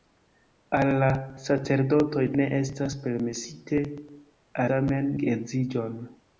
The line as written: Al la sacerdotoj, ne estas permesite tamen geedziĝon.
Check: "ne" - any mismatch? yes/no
no